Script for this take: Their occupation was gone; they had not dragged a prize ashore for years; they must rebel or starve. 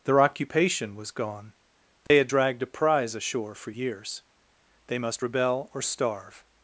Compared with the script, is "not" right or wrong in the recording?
wrong